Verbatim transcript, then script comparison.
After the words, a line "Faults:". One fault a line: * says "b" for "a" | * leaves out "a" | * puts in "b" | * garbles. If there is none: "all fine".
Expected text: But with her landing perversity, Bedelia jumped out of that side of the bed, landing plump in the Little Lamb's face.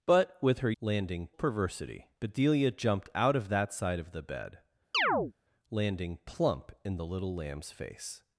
But with her landing perversity, Bedelia jumped out of that side of the bed, landing plump in the Little Lamb's face.
Faults:
all fine